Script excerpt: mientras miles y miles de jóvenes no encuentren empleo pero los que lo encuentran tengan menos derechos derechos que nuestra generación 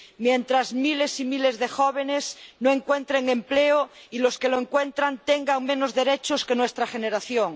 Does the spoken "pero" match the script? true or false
false